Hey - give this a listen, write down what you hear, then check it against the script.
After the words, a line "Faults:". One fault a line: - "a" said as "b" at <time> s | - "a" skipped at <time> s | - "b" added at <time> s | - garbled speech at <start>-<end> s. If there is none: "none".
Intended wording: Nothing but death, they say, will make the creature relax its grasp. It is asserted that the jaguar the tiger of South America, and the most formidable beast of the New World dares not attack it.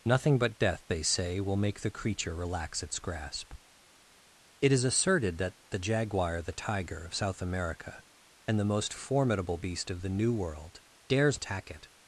Nothing but death, they say, will make the creature relax its grasp. It is asserted that the jaguar the tiger of South America, and the most formidable beast of the New World dares attack it.
Faults:
- "not" skipped at 11.4 s